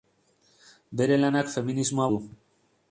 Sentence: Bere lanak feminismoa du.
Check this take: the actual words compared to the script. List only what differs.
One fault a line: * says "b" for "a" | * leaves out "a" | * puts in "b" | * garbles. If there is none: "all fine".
all fine